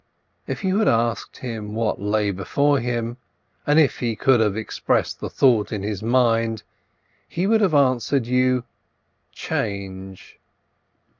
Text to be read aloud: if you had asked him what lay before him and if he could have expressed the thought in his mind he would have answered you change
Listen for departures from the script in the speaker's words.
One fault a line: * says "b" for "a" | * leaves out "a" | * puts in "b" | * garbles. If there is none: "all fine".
all fine